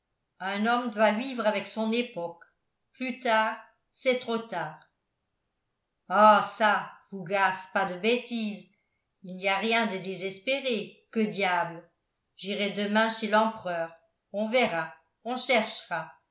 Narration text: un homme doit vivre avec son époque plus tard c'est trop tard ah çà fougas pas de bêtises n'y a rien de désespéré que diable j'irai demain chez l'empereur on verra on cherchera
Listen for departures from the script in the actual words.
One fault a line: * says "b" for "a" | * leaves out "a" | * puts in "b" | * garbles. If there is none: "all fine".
* puts in "il"